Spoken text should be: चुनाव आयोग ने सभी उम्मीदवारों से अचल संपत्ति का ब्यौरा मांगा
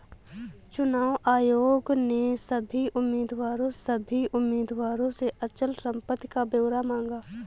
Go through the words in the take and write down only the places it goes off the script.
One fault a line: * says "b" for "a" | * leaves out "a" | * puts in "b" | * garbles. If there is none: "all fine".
* puts in "सभी उम्मीदवारों"